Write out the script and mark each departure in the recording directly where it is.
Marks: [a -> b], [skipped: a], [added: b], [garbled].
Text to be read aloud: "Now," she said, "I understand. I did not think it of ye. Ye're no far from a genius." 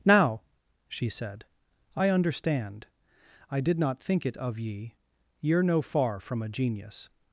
"Now," she said, "I understand. I did not think it of ye. Ye're no far from a genius."